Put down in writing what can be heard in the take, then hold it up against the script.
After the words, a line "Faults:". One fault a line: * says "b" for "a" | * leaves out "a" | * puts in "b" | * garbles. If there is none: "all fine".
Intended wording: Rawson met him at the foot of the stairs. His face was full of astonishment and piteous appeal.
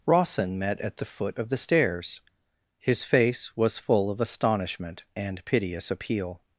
Rawson met at the foot of the stairs. His face was full of astonishment and piteous appeal.
Faults:
* leaves out "him"